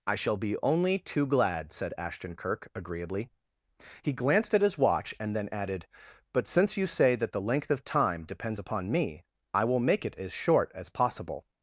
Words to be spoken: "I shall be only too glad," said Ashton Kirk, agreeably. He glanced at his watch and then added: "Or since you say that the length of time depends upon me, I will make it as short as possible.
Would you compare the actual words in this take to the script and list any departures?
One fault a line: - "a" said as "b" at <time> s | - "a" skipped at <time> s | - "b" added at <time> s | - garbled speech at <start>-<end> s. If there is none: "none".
- "Or" said as "But" at 6.3 s